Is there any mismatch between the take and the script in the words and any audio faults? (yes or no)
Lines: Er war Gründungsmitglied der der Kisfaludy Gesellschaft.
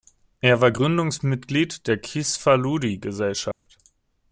yes